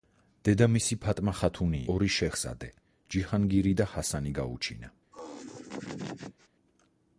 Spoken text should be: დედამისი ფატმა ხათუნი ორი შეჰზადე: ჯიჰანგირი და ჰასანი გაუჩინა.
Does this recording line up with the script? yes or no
yes